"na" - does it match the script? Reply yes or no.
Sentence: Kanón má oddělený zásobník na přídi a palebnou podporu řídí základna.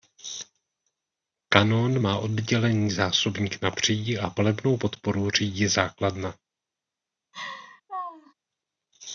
yes